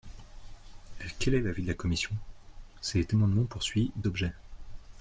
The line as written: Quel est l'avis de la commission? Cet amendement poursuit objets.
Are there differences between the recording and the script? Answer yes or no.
no